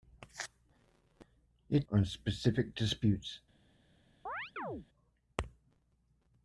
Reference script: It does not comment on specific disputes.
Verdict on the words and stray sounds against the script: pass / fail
fail